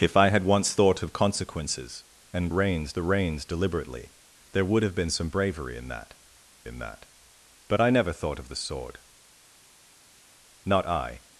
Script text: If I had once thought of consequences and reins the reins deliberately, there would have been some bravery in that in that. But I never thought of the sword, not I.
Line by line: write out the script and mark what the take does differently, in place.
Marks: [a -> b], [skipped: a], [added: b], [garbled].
If I had once thought of consequences and reins the reins deliberately, there would have been some bravery in that in that. But I never thought of the sword, not I.